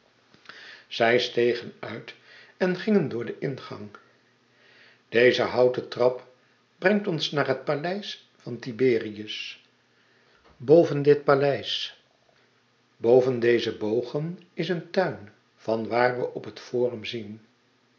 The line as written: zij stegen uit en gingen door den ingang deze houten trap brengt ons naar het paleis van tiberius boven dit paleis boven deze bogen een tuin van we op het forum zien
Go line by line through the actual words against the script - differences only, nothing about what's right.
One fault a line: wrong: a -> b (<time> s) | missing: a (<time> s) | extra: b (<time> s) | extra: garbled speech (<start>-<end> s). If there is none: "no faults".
extra: is (14.5 s)
extra: waar (15.9 s)